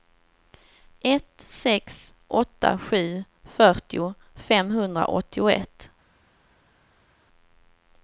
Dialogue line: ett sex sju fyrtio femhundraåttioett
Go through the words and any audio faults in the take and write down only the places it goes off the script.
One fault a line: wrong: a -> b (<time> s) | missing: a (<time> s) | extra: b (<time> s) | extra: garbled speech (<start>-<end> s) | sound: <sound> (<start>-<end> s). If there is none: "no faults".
extra: åtta (2.3 s)